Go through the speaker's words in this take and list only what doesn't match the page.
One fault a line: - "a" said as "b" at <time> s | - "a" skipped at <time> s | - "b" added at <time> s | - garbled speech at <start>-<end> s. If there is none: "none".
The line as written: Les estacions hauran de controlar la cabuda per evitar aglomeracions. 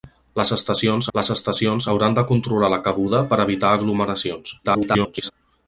- "les estacions" added at 1.2 s
- garbled speech at 4.6-5.3 s